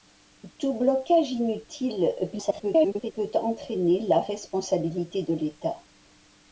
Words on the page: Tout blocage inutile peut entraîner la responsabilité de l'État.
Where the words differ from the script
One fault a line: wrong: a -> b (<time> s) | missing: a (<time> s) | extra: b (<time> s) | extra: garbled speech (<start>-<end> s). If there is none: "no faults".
extra: garbled speech (2.3-3.1 s)